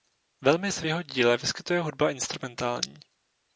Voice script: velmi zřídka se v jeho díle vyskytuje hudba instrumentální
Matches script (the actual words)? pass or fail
fail